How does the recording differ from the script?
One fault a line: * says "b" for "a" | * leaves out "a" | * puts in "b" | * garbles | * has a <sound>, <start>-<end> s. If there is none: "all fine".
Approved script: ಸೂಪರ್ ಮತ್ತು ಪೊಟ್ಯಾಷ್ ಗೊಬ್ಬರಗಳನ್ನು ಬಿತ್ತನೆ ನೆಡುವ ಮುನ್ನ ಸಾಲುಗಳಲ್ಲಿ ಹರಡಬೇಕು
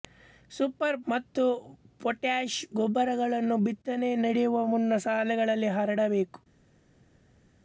all fine